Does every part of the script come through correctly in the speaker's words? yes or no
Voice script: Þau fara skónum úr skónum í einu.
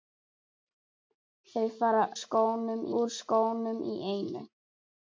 yes